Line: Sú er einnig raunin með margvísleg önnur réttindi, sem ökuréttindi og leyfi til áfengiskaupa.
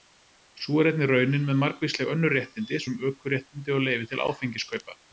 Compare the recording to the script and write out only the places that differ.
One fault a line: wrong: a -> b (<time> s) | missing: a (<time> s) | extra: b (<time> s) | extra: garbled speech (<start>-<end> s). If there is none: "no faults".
no faults